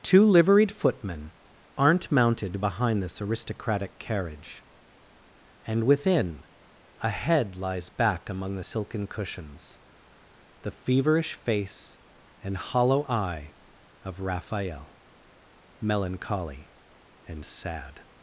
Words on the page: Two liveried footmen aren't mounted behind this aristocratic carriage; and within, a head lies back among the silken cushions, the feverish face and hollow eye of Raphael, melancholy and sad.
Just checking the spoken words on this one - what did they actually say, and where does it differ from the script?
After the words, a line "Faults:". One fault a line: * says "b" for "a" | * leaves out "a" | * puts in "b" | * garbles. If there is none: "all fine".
Two liveried footmen aren't mounted behind this aristocratic carriage; and within, a head lies back among the silken cushions, the feverish face and hollow eye of Raphael, melancholy and sad.
Faults:
all fine